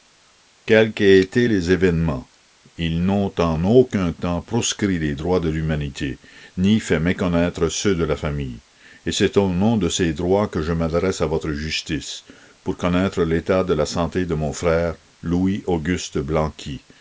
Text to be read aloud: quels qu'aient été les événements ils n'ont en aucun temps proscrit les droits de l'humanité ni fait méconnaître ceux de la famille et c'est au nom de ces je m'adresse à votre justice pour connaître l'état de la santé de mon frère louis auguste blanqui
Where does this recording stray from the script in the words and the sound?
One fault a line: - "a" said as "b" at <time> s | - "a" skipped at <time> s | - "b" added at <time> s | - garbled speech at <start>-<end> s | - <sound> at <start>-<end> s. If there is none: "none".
- "droits que" added at 10.1 s